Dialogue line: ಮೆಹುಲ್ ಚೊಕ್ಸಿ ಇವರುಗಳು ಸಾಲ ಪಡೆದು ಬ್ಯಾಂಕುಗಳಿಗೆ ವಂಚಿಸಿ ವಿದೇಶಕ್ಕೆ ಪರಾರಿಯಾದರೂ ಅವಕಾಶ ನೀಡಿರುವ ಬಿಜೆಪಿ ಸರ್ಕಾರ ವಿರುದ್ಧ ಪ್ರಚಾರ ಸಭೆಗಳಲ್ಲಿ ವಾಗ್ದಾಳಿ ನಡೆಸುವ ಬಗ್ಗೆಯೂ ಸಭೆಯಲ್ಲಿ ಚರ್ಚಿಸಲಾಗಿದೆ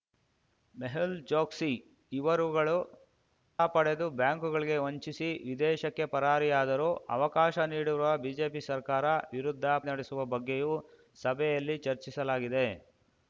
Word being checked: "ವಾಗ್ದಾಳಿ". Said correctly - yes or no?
no